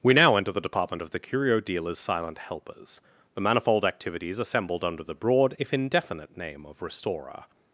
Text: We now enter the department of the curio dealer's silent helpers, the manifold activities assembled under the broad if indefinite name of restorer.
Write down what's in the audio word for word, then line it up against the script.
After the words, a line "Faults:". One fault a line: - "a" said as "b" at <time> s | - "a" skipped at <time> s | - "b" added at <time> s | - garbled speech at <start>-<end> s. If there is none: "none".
We now enter the department of the curio dealer's silent helpers, the manifold activities assembled under the broad if indefinite name of restorer.
Faults:
none